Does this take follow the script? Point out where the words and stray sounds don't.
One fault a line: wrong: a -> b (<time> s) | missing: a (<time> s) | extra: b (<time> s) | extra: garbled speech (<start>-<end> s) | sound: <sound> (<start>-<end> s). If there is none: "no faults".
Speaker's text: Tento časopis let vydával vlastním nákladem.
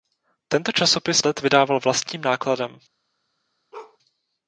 sound: bark (3.7-4.0 s)